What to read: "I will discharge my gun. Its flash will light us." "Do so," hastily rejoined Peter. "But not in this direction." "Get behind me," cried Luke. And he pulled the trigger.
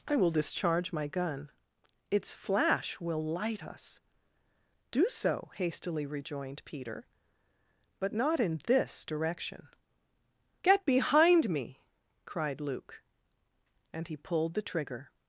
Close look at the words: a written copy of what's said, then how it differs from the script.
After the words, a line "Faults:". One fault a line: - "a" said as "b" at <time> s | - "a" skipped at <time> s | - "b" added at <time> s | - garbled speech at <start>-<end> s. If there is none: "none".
"I will discharge my gun. Its flash will light us." "Do so," hastily rejoined Peter. "But not in this direction." "Get behind me," cried Luke. And he pulled the trigger.
Faults:
none